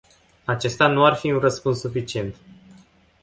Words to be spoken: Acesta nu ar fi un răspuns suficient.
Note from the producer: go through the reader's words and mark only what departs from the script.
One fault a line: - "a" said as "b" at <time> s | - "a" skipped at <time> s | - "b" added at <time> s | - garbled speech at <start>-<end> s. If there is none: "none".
none